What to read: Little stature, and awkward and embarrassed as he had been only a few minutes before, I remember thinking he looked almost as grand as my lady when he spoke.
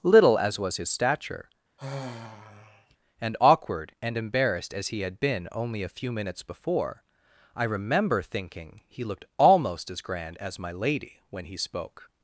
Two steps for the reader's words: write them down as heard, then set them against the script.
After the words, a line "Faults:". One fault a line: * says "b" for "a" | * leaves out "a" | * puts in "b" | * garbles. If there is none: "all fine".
Little as was his stature, and awkward and embarrassed as he had been only a few minutes before, I remember thinking he looked almost as grand as my lady when he spoke.
Faults:
* puts in "as was his"